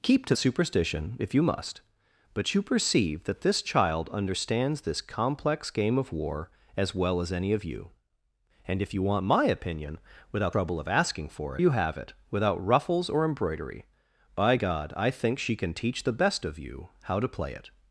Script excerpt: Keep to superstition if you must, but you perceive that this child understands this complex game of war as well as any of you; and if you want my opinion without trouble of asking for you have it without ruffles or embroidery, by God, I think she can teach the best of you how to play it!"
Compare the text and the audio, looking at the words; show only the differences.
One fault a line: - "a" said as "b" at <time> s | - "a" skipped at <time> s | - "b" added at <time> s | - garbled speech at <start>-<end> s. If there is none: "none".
none